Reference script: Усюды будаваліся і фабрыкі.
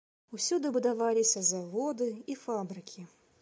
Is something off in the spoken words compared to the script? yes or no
yes